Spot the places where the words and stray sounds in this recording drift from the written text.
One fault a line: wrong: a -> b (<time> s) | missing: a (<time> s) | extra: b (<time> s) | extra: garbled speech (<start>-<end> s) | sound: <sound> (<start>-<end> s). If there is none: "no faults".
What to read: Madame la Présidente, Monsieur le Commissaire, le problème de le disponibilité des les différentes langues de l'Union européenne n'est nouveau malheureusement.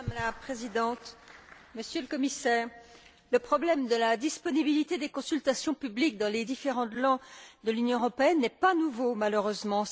wrong: le -> la (4.0 s)
extra: consultations publiques dans (5.1 s)
extra: pas (8.5 s)